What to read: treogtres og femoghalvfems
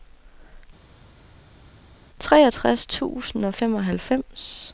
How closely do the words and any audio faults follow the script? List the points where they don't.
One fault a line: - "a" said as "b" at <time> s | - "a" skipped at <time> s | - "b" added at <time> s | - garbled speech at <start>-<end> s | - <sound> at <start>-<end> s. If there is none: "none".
- "tusind" added at 2.8 s